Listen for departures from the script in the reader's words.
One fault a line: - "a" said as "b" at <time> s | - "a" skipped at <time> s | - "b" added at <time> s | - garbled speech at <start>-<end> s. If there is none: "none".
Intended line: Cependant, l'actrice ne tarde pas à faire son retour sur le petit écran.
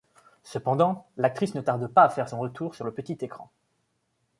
none